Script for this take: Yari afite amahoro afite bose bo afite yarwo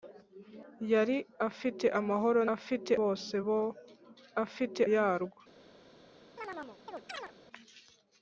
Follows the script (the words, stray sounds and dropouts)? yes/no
no